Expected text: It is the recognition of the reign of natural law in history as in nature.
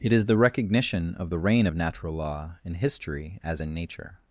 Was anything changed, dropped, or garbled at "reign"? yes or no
no